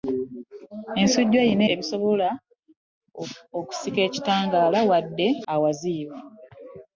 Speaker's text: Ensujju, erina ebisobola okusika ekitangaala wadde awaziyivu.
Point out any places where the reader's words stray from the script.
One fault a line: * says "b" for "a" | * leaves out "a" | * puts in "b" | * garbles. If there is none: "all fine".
all fine